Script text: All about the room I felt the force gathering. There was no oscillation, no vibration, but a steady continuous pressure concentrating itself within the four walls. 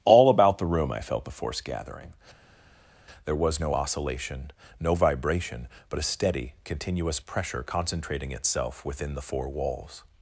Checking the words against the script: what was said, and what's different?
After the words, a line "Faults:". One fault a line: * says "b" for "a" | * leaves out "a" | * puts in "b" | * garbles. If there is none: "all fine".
All about the room I felt the force gathering. There was no oscillation, no vibration, but a steady continuous pressure concentrating itself within the four walls.
Faults:
all fine